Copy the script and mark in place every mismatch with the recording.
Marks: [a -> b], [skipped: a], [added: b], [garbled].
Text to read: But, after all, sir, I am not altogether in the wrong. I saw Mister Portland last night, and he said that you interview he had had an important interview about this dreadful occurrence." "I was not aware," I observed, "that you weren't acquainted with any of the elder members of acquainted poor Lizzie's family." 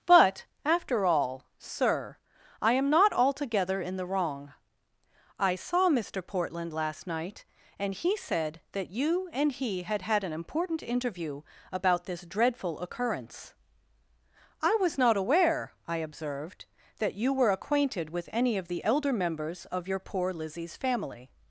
But, after all, sir, I am not altogether in the wrong. I saw Mister Portland last night, and he said that you [interview -> and] he had had an important interview about this dreadful occurrence." "I was not aware," I observed, "that you [weren't -> were] acquainted with any of the elder members of [acquainted -> your] poor Lizzie's family."